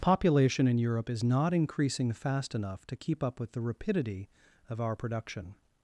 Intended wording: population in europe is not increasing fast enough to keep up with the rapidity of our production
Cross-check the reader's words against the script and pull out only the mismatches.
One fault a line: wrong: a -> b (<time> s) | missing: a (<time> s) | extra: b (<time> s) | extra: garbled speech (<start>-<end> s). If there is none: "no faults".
no faults